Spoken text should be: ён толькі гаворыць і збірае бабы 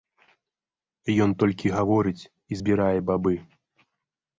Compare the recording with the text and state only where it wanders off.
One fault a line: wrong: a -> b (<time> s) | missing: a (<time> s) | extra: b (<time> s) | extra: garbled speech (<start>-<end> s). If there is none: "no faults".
no faults